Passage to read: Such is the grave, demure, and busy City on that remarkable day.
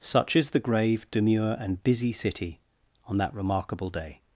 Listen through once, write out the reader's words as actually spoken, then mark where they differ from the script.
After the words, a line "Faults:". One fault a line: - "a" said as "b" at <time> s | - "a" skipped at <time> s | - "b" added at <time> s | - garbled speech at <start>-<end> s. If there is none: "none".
Such is the grave, demure, and busy City on that remarkable day.
Faults:
none